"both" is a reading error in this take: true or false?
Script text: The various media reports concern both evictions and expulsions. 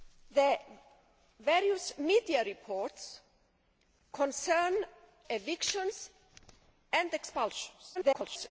true